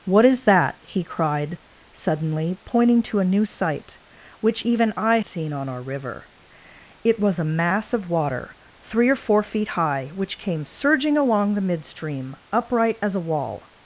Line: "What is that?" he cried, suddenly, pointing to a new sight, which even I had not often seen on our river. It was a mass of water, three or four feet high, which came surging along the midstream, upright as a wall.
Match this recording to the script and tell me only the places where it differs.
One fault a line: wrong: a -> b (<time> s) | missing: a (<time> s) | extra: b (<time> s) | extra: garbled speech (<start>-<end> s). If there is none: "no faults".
missing: had not often (5.2 s)